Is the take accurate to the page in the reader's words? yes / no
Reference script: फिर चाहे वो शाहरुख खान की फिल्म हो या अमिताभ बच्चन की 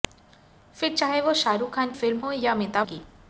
no